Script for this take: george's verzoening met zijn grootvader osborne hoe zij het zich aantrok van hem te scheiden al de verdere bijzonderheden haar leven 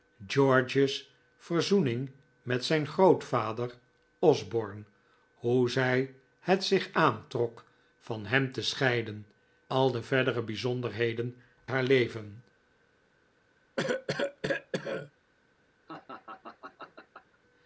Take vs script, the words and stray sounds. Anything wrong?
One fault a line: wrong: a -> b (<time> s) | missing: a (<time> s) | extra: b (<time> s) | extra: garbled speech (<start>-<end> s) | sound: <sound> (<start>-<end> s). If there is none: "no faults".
sound: cough (13.8-15.1 s)
sound: laugh (15.9-17.4 s)